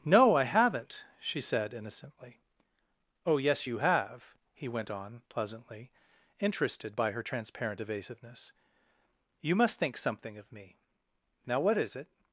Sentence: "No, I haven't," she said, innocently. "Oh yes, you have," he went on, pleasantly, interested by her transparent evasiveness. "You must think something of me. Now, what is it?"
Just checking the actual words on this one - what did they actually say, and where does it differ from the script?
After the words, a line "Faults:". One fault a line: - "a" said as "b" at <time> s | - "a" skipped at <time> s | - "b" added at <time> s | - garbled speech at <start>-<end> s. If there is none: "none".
"No, I haven't," she said, innocently. "Oh yes, you have," he went on, pleasantly, interested by her transparent evasiveness. "You must think something of me. Now, what is it?"
Faults:
none